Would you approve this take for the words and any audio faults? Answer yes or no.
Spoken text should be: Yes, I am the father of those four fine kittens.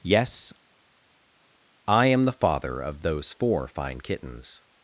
yes